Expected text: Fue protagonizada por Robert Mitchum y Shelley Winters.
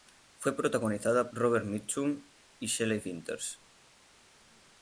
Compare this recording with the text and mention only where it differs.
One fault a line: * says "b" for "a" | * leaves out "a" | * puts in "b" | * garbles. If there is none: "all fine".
* leaves out "por"